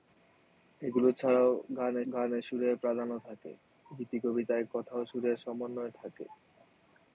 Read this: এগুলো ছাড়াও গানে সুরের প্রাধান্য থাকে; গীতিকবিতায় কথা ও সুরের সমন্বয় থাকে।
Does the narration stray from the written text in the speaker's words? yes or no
yes